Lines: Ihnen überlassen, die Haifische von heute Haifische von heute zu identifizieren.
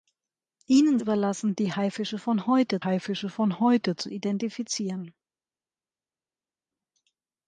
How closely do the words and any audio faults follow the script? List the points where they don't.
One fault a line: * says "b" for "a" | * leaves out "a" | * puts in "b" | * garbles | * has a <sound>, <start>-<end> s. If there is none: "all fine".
all fine